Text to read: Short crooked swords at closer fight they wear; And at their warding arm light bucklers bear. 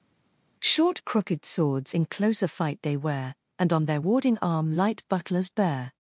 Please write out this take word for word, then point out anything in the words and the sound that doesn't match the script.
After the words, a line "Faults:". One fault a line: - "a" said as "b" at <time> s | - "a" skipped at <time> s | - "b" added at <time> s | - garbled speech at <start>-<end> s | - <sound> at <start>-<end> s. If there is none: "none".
Short crooked swords in closer fight they wear; And on their warding arm light bucklers bear.
Faults:
- "at" said as "in" at 1.9 s
- "at" said as "on" at 3.7 s